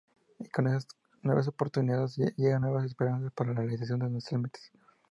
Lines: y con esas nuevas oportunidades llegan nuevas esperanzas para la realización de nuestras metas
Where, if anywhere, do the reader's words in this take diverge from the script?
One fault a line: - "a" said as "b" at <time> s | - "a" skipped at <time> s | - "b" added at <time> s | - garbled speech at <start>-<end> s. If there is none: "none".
none